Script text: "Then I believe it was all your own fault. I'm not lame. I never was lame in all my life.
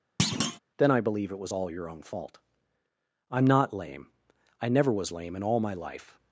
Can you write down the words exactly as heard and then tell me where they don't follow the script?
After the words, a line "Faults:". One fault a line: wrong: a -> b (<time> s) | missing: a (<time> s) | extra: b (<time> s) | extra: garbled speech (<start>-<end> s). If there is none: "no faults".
"Then I believe it was all your own fault. I'm not lame. I never was lame in all my life.
Faults:
no faults